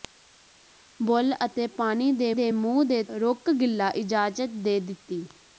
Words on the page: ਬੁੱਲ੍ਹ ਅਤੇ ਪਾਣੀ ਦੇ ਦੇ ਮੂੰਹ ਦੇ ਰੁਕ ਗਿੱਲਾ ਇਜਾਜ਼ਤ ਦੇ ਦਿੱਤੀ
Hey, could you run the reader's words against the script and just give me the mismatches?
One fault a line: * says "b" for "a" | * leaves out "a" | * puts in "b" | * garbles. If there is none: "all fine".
all fine